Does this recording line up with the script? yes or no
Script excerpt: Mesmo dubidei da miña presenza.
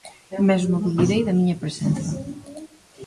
yes